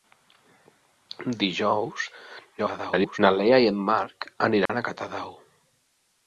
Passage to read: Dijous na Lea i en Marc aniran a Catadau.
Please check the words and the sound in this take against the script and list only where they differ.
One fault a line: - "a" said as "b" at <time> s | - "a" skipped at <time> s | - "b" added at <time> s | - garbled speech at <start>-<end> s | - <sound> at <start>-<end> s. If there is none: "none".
- garbled speech at 2.6-3.2 s
- dropout at 4.7-4.7 s